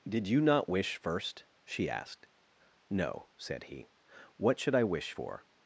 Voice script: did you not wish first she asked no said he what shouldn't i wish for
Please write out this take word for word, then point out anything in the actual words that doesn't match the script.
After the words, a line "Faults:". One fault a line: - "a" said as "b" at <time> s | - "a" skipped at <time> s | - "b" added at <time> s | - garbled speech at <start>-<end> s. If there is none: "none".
did you not wish first she asked no said he what should i wish for
Faults:
- "shouldn't" said as "should" at 4.6 s